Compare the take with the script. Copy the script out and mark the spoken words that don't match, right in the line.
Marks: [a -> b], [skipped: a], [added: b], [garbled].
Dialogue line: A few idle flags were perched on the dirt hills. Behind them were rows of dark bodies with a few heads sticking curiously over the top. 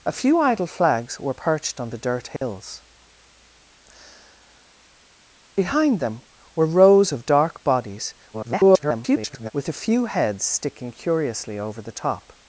A few idle flags were perched on the dirt hills. Behind them were rows of dark bodies [garbled] with a few heads sticking curiously over the top.